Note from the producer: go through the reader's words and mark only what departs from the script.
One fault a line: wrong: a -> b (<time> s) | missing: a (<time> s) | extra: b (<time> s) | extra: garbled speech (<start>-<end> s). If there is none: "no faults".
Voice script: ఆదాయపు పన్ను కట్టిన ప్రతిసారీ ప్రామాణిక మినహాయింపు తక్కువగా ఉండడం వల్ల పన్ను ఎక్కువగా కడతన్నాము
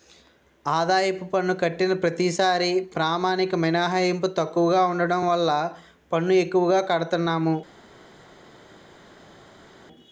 no faults